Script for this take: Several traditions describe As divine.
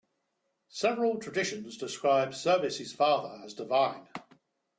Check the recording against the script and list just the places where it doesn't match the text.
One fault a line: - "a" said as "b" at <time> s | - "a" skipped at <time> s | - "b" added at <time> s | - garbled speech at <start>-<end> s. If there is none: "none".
- "Servius father" added at 2.3 s